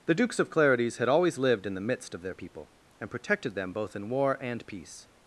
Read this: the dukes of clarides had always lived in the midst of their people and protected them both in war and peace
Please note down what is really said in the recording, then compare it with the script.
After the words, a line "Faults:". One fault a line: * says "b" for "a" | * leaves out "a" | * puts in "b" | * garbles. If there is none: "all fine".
the dukes of clarides had always lived in the midst of their people and protected them both in war and peace
Faults:
all fine